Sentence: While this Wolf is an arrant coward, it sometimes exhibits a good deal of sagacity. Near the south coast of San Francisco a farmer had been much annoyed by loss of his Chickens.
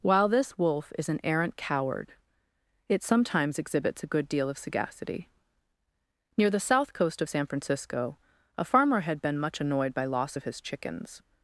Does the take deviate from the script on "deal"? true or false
false